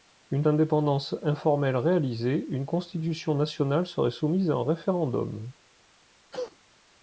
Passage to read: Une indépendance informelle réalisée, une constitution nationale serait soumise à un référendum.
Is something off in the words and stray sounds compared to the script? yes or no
yes